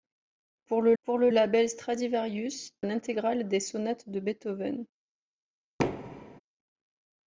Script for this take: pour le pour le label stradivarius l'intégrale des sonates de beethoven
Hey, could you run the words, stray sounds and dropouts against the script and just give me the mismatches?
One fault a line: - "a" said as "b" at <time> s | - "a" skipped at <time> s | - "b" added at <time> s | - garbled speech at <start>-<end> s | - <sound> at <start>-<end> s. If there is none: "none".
- thud at 5.8-6.4 s